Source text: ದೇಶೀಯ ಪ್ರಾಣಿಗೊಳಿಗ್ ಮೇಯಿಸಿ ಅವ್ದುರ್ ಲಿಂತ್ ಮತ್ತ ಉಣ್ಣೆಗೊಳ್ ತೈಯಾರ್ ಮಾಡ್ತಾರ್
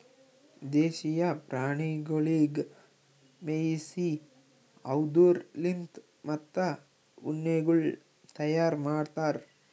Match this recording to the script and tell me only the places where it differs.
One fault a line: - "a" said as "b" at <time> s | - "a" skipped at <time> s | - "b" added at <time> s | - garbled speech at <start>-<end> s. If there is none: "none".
none